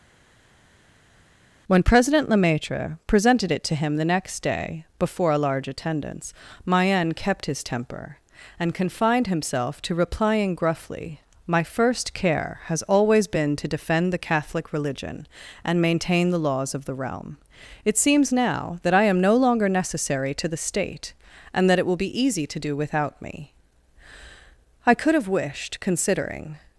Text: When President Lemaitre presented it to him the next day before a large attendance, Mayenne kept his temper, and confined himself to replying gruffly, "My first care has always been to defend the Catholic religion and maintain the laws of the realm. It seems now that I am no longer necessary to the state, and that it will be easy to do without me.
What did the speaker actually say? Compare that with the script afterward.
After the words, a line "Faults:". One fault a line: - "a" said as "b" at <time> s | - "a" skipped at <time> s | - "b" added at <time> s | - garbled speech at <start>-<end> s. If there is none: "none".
When President Lemaitre presented it to him the next day before a large attendance, Mayenne kept his temper, and confined himself to replying gruffly, "My first care has always been to defend the Catholic religion and maintain the laws of the realm. It seems now that I am no longer necessary to the state, and that it will be easy to do without me. I could have wished, considering
Faults:
- "I could have wished considering" added at 24.8 s